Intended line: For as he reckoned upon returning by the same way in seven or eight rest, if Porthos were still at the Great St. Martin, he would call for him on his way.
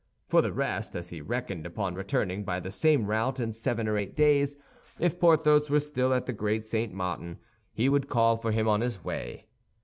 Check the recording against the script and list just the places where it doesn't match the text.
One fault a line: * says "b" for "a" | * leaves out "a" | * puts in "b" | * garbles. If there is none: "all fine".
* puts in "the rest"
* says "route" for "way"
* says "days" for "rest"